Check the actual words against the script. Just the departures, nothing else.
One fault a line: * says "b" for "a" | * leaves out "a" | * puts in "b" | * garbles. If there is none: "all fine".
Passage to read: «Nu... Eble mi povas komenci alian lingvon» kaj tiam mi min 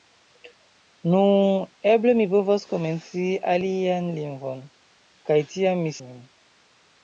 all fine